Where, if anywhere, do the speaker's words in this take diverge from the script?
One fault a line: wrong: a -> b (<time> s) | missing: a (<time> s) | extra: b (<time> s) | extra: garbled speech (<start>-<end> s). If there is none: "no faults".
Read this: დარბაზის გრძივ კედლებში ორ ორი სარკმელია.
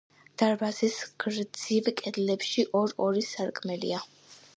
no faults